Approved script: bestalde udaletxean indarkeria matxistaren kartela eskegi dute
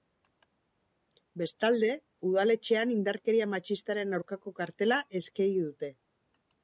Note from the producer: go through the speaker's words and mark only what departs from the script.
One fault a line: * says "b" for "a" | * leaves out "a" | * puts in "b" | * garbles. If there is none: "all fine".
* puts in "aurkako"